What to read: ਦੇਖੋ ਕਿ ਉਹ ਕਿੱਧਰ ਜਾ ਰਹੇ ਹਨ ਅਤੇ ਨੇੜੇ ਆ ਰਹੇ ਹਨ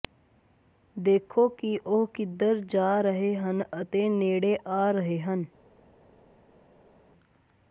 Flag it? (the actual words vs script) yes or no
no